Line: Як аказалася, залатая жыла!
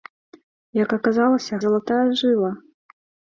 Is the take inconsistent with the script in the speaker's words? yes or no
no